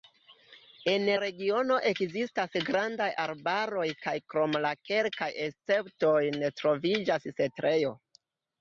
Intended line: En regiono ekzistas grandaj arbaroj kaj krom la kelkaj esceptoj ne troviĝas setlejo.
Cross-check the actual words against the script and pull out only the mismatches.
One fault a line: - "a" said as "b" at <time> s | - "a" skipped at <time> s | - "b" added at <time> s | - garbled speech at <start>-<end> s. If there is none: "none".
none